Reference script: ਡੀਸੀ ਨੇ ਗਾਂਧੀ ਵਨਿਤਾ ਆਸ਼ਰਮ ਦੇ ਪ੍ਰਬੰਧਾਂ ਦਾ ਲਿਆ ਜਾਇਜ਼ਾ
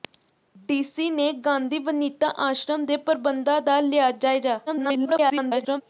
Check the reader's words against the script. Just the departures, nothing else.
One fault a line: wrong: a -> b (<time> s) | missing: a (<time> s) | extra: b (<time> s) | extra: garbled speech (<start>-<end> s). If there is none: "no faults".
extra: garbled speech (4.7-5.8 s)